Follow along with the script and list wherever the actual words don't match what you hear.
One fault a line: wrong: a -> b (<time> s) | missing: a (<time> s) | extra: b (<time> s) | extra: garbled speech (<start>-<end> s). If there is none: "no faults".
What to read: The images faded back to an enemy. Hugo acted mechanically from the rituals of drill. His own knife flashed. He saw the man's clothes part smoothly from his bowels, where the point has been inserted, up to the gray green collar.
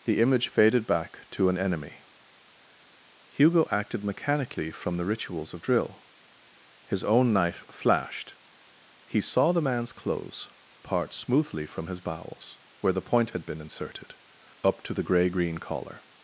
wrong: images -> image (0.2 s)
wrong: has -> had (13.3 s)